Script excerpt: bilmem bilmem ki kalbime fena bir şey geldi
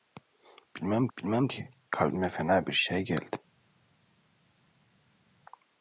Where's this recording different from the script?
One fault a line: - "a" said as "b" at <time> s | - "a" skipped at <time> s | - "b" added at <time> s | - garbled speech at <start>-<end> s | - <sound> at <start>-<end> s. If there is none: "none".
none